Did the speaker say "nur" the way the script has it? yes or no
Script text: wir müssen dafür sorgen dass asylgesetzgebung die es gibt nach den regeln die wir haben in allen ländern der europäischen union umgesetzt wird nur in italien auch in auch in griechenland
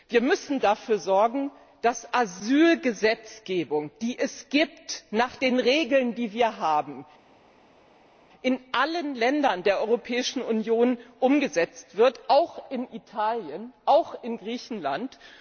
no